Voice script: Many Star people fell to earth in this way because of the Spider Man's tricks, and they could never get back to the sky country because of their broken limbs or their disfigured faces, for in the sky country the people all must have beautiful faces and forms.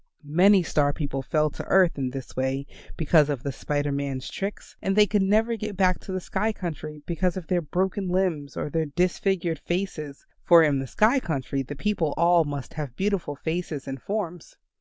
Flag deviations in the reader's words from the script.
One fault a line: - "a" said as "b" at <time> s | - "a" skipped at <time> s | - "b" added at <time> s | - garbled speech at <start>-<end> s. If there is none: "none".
none